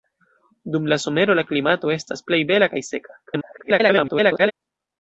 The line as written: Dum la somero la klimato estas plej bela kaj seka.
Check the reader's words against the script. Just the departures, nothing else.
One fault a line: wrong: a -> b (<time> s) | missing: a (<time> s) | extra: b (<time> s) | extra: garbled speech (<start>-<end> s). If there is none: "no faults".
extra: garbled speech (3.3-4.5 s)